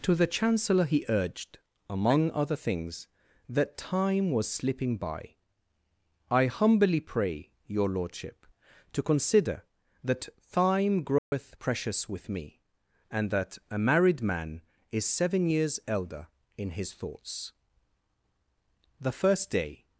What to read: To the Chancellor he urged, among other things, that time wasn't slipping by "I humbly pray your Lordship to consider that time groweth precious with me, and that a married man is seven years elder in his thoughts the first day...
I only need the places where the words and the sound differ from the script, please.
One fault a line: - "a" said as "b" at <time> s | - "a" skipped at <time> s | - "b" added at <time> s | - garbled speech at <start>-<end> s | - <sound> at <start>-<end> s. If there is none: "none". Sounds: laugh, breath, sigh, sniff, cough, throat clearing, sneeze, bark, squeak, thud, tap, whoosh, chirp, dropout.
- "wasn't" said as "was" at 4.3 s
- dropout at 11.2-11.3 s